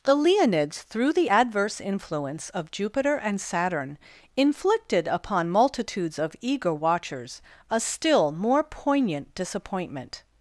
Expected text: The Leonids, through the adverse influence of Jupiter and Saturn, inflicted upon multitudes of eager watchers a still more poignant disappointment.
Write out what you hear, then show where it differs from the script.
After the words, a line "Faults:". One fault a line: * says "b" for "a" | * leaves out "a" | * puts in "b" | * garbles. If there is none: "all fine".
The Leonids, through the adverse influence of Jupiter and Saturn, inflicted upon multitudes of eager watchers a still more poignant disappointment.
Faults:
all fine